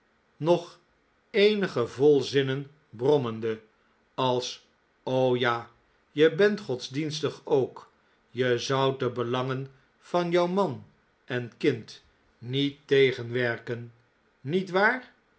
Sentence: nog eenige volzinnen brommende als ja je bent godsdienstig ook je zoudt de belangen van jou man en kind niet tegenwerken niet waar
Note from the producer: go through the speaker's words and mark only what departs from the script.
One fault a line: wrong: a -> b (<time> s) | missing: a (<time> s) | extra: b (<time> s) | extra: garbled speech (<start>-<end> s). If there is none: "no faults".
no faults